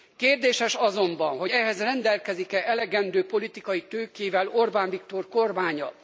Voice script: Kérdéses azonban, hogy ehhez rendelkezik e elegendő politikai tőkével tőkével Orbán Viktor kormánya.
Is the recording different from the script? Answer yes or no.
yes